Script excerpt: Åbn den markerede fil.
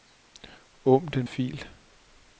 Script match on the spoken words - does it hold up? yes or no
no